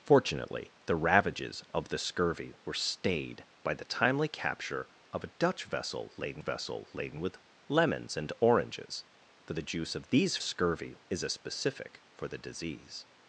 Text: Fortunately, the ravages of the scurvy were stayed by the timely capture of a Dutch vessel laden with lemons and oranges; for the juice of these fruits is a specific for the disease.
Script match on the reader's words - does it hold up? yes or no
no